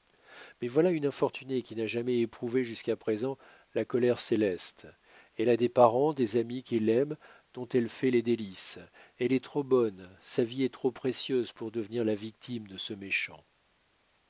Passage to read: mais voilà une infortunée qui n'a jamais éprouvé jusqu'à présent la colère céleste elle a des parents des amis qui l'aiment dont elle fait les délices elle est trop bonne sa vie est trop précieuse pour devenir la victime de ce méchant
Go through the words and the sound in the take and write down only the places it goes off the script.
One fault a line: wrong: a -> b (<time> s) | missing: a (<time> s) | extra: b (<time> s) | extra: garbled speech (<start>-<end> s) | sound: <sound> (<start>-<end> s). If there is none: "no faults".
no faults